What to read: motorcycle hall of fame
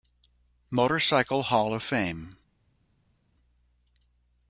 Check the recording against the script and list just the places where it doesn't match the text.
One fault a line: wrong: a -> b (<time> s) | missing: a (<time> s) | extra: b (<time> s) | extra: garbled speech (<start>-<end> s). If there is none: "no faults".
no faults